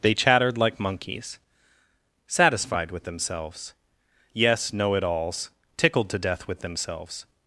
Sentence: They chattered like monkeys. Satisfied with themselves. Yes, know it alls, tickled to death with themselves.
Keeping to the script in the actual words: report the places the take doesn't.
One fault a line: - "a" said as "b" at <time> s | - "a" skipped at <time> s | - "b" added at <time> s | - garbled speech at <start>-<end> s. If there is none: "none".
none